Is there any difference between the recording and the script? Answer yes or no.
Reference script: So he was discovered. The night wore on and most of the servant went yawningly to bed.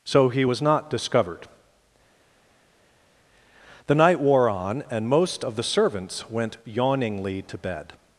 yes